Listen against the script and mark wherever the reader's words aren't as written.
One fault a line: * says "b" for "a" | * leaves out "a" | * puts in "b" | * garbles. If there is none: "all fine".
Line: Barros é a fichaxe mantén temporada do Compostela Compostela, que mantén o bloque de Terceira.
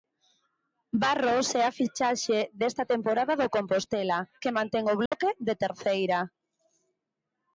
* says "desta" for "mantén"
* leaves out "Compostela"